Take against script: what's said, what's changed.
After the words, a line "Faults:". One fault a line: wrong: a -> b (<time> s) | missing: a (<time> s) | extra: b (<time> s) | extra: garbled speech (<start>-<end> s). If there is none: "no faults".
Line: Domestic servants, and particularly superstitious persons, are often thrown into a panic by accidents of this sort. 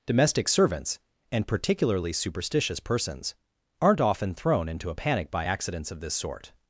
Domestic servants, and particularly superstitious persons, aren't often thrown into a panic by accidents of this sort.
Faults:
wrong: are -> aren't (3.8 s)